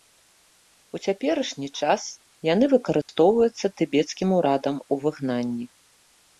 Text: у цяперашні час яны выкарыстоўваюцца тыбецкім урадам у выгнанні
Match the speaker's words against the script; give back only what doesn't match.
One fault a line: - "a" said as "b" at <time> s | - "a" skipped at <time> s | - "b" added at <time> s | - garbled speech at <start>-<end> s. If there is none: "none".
none